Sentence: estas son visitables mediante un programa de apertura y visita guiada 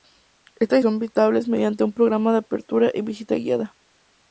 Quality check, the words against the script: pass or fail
pass